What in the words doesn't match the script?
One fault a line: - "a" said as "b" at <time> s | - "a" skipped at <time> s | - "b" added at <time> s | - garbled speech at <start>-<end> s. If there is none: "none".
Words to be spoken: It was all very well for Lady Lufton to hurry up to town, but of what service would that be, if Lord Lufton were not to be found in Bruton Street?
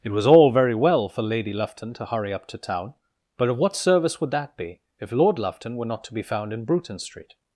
none